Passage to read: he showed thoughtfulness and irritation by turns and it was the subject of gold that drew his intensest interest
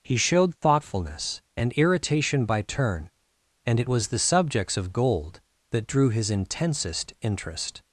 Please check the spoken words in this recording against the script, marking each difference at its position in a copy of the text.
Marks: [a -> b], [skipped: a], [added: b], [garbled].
he showed thoughtfulness and irritation by [turns -> turn] and it was the [subject -> subjects] of gold that drew his intensest interest